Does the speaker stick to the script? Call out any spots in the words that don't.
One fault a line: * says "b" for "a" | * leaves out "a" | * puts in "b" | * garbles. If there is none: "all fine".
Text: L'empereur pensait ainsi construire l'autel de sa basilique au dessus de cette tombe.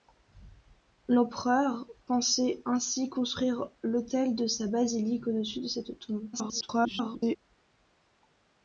* garbles